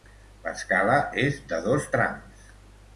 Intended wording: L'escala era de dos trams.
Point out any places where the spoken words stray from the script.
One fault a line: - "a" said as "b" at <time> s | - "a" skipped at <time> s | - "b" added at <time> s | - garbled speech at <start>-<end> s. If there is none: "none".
- "era" said as "és" at 1.3 s